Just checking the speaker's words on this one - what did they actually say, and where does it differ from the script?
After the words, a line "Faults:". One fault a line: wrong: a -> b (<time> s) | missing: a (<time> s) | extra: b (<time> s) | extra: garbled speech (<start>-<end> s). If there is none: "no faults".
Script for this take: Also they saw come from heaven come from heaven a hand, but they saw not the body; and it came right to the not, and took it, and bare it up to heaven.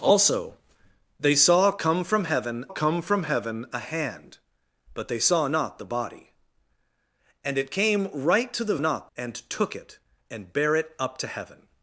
Also they saw come from heaven come from heaven a hand, but they saw not the body; and it came right to the not, and took it, and bare it up to heaven.
Faults:
no faults